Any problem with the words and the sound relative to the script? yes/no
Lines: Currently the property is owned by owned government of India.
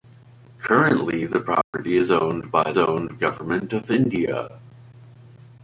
yes